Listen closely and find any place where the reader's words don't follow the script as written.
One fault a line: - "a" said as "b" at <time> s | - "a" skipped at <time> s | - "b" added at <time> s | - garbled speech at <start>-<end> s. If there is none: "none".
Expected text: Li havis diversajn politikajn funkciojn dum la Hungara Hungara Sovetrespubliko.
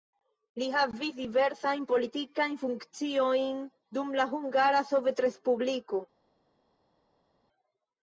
- "Hungara" skipped at 4.8 s